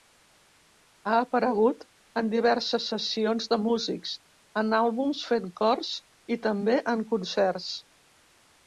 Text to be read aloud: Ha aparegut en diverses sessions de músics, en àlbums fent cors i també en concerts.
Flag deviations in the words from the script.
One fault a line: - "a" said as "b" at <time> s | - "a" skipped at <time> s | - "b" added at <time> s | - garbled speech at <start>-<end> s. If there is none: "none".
none